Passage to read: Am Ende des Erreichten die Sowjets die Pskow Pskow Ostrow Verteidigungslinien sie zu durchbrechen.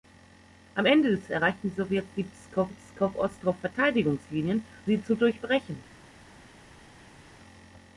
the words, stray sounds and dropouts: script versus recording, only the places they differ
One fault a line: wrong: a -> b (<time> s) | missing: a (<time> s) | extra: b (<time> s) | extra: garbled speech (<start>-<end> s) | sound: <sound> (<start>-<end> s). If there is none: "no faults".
no faults